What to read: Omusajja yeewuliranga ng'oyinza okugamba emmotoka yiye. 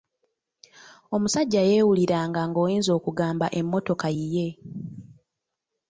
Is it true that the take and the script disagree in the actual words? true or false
false